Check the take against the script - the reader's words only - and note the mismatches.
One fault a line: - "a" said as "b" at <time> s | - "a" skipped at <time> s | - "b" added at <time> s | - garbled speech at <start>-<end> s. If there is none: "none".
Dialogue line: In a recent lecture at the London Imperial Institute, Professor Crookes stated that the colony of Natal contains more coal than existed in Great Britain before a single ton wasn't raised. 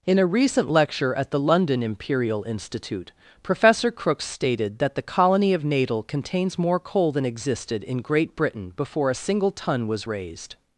- "wasn't" said as "was" at 9.9 s